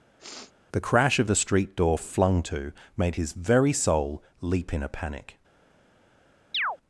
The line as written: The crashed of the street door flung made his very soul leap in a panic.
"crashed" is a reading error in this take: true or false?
true